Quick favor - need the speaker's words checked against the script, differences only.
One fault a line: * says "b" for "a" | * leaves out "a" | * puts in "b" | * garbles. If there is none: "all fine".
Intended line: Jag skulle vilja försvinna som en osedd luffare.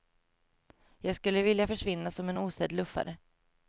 all fine